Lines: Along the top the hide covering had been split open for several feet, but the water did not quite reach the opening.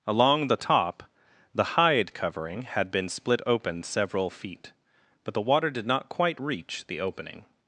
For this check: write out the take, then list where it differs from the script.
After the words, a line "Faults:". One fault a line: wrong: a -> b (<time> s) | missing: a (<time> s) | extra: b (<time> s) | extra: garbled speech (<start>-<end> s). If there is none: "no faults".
Along the top the hide covering had been split open several feet, but the water did not quite reach the opening.
Faults:
missing: for (3.8 s)